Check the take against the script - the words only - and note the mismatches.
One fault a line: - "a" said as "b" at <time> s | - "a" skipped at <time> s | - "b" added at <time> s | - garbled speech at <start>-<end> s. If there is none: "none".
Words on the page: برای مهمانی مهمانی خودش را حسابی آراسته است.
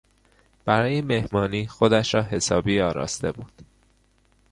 - "مهمانی" skipped at 1.7 s
- "است" said as "بود" at 3.3 s